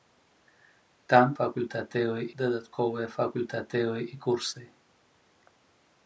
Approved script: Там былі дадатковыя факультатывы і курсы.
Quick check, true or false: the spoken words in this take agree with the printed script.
false